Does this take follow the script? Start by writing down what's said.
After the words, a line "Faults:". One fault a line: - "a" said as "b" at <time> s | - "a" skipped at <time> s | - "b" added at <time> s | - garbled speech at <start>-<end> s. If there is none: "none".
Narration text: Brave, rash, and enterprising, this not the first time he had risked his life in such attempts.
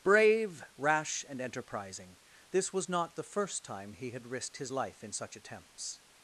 Brave, rash, and enterprising, this was not the first time he had risked his life in such attempts.
Faults:
- "was" added at 2.7 s